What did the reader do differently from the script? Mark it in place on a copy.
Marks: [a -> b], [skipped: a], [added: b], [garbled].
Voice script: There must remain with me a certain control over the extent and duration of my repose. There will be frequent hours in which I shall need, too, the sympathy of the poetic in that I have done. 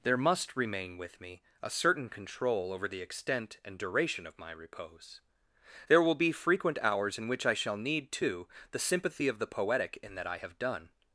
There must remain with me a certain control over the extent and duration of my repose. There will be frequent hours in which I shall need, too, the sympathy of the poetic in that I have done.